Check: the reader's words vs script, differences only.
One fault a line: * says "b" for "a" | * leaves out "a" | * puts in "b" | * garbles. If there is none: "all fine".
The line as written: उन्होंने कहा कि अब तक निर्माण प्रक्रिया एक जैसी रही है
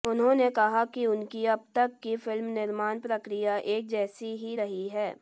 * puts in "उनकी"
* puts in "की फिल्म"
* puts in "ही"